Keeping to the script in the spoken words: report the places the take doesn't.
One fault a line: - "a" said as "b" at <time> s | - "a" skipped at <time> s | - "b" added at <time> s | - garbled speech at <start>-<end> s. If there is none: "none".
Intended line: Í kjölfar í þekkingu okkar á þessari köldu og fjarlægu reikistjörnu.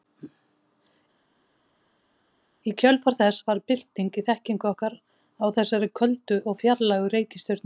- "þess varð bylting" added at 3.2 s